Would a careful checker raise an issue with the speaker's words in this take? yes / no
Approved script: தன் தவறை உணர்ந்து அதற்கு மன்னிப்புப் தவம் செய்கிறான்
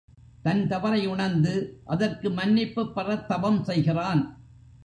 yes